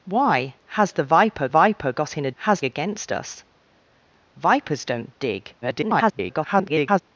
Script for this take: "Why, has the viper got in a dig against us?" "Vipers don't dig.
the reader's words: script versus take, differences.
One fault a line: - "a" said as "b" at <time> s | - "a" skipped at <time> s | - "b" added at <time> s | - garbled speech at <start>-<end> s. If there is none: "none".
- "viper" added at 1.5 s
- "dig" said as "has" at 2.3 s
- garbled speech at 5.6-7.0 s